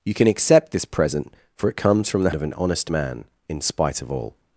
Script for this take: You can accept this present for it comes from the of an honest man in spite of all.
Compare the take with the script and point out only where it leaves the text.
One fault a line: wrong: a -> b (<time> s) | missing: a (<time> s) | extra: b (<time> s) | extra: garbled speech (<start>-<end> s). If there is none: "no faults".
no faults